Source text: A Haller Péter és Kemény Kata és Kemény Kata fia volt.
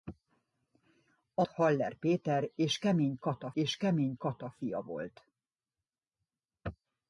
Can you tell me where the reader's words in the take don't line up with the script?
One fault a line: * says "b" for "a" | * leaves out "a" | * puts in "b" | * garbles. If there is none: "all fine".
all fine